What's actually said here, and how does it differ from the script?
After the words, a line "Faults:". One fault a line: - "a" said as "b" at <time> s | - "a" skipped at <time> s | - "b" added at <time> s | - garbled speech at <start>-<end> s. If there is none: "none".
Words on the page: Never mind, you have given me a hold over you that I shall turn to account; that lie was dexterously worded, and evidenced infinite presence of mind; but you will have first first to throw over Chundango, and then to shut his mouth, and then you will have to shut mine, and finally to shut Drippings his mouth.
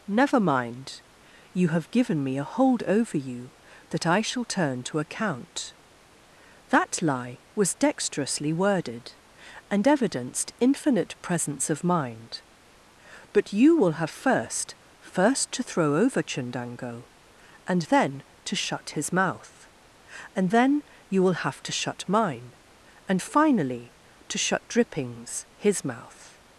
Never mind, you have given me a hold over you that I shall turn to account; that lie was dexterously worded, and evidenced infinite presence of mind; but you will have first first to throw over Chundango, and then to shut his mouth, and then you will have to shut mine, and finally to shut Drippings his mouth.
Faults:
none